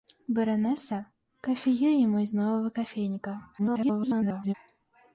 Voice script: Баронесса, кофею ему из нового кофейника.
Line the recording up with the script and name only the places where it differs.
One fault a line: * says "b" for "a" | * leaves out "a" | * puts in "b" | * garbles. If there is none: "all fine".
* garbles